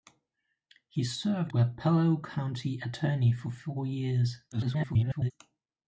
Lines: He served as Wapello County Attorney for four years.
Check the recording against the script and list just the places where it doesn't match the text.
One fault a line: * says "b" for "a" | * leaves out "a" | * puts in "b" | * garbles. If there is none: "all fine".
* leaves out "as"
* garbles